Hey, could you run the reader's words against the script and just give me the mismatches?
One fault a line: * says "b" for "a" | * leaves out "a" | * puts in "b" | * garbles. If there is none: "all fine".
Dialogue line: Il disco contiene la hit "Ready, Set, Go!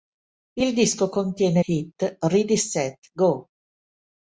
* leaves out "la"